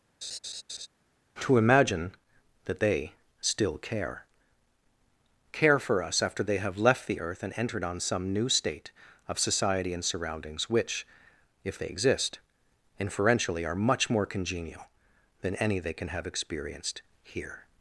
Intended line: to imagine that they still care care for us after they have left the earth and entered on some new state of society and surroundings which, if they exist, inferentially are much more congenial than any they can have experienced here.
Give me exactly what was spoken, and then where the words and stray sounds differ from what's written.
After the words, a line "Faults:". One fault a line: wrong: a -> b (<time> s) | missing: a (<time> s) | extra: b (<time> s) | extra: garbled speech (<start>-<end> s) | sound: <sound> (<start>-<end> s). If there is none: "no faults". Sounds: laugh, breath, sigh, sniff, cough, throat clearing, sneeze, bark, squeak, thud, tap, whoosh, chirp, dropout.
to imagine that they still care care for us after they have left the earth and entered on some new state of society and surroundings which, if they exist, inferentially are much more congenial than any they can have experienced here.
Faults:
sound: laugh (0.2-0.9 s)